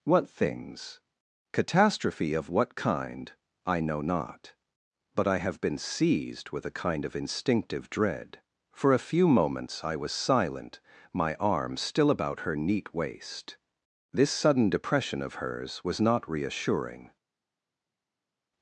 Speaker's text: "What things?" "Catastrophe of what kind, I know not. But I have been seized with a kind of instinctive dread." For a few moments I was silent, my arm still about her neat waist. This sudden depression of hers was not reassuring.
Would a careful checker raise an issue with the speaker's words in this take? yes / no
no